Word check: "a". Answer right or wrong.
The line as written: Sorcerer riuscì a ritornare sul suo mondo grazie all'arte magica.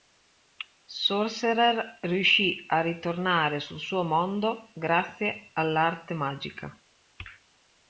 right